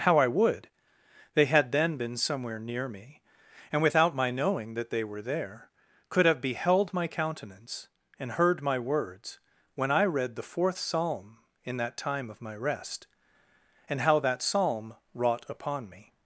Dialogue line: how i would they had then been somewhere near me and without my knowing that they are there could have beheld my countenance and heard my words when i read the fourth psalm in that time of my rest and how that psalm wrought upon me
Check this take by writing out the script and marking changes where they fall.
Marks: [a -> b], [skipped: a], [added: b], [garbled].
how i would they had then been somewhere near me and without my knowing that they [are -> were] there could have beheld my countenance and heard my words when i read the fourth psalm in that time of my rest and how that psalm wrought upon me